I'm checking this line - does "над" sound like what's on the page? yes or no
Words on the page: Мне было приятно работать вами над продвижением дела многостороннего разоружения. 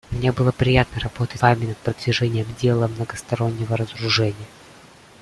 yes